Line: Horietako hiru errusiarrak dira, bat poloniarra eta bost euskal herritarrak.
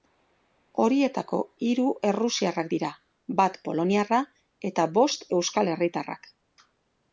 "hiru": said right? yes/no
yes